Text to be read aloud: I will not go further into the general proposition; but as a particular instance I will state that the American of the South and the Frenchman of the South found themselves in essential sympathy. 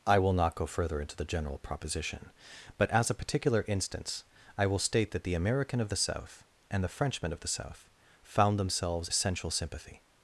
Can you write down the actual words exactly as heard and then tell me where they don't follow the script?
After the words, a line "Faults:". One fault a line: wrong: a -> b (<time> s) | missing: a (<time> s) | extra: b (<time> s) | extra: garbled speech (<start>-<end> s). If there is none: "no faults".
I will not go further into the general proposition; but as a particular instance I will state that the American of the South and the Frenchman of the South found themselves essential sympathy.
Faults:
missing: in (9.1 s)